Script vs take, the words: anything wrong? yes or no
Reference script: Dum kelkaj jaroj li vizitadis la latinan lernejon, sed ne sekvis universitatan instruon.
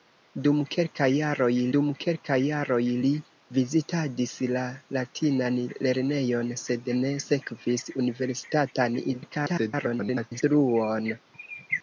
yes